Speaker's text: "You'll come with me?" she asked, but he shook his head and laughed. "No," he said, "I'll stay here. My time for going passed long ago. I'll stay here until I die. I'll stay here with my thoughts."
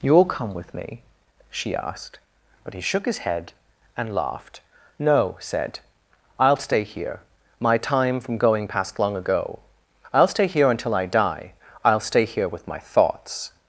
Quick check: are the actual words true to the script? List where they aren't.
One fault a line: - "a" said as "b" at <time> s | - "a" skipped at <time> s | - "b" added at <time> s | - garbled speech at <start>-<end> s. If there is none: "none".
- "he" skipped at 5.3 s
- "for" said as "from" at 8.2 s